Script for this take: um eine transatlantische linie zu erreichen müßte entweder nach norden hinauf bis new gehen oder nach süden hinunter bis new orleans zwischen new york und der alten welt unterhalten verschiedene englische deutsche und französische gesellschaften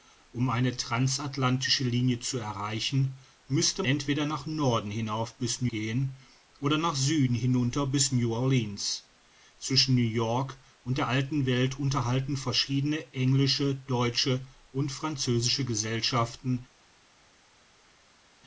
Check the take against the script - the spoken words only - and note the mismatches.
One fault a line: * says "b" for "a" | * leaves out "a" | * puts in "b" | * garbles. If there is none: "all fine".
all fine